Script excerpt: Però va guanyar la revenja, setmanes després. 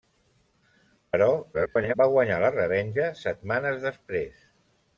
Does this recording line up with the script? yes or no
no